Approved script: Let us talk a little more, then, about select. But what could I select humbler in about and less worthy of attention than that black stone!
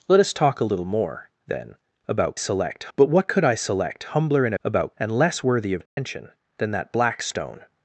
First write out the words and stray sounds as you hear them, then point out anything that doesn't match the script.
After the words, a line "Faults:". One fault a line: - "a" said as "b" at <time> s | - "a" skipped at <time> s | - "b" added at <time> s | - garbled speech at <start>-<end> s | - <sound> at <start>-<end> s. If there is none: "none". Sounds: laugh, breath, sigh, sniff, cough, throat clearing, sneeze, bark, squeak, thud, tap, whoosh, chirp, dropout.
Let us talk a little more, then, about select. But what could I select humbler in about and less worthy of attention than that black stone!
Faults:
- dropout at 5.9-6.0 s